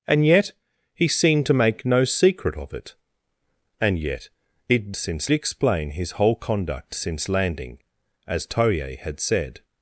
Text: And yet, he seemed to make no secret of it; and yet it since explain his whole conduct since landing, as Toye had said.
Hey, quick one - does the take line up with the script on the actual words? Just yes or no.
yes